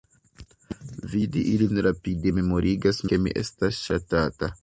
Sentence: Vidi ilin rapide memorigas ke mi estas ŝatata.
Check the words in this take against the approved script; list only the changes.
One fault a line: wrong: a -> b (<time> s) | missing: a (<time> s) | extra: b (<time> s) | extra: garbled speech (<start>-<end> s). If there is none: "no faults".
no faults